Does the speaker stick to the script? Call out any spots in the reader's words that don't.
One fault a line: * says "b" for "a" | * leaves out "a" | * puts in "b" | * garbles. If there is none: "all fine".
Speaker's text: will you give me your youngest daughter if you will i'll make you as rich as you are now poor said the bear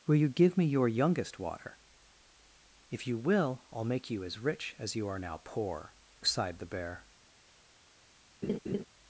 * says "water" for "daughter"
* says "sighed" for "said"